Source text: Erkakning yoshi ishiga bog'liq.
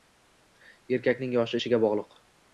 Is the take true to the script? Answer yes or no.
yes